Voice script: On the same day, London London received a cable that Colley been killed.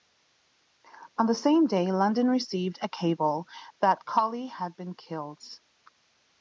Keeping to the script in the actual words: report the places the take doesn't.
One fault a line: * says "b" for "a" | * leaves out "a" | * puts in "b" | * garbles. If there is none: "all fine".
* leaves out "London"
* puts in "had"